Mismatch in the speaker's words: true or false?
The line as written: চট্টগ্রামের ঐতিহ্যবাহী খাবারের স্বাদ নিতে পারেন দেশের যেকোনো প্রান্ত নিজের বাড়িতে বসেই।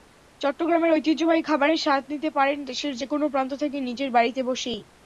true